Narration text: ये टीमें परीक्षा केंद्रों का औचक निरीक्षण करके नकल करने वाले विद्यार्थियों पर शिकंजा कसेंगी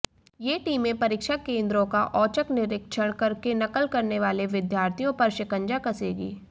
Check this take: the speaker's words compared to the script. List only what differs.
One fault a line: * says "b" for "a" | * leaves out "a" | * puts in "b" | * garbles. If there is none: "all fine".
all fine